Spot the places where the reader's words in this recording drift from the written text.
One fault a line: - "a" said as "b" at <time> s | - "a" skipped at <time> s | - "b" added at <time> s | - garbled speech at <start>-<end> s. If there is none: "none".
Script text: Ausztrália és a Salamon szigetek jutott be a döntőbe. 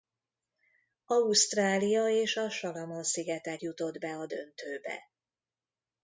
none